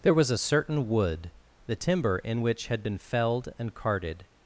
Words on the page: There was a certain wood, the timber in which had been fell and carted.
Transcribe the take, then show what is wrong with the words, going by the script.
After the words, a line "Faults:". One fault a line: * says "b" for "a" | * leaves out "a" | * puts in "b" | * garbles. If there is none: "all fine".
There was a certain wood, the timber in which had been felled and carted.
Faults:
* says "felled" for "fell"